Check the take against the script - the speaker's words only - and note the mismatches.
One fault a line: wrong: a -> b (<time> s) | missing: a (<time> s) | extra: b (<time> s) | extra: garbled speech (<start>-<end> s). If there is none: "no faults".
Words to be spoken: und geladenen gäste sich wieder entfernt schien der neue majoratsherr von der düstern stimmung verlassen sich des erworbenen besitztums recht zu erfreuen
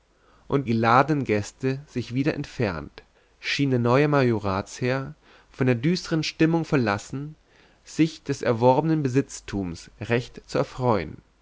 no faults